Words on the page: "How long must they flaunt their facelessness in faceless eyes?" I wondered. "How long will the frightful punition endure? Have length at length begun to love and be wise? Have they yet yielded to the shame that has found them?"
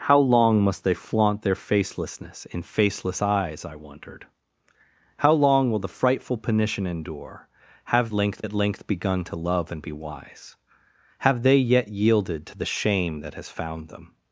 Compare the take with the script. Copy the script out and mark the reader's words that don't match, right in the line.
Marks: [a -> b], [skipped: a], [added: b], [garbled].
"How long must they flaunt their facelessness in faceless eyes?" I wondered. "How long will the frightful punition endure? Have length at length begun to love and be wise? Have they yet yielded to the shame that has found them?"